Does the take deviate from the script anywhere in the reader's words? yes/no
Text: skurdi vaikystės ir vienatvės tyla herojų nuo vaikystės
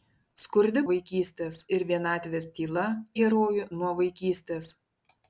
no